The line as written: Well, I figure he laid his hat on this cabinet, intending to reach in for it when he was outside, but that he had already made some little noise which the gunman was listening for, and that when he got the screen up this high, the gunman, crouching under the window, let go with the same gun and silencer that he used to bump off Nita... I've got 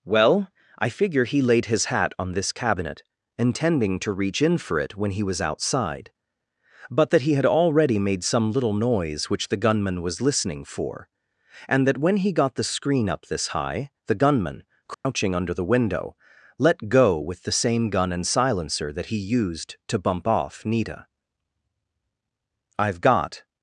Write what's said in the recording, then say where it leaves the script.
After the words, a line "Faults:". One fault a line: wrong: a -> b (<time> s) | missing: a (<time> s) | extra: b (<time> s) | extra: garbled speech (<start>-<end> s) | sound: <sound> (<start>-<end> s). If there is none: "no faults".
Well, I figure he laid his hat on this cabinet, intending to reach in for it when he was outside, but that he had already made some little noise which the gunman was listening for, and that when he got the screen up this high, the gunman, crouching under the window, let go with the same gun and silencer that he used to bump off Nita... I've got
Faults:
sound: dropout (14.9-15.1 s)